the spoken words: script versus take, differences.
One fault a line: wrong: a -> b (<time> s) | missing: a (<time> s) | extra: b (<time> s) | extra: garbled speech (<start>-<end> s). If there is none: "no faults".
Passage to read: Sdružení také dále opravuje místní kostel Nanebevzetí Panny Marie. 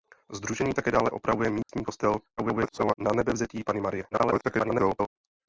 extra: garbled speech (2.4-2.9 s)
extra: garbled speech (4.1-5.1 s)